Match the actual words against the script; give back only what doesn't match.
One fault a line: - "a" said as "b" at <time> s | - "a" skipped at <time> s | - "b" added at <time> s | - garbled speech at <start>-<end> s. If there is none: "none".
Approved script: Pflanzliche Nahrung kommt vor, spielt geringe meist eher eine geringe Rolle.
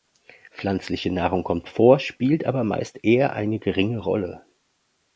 - "geringe" said as "aber" at 2.5 s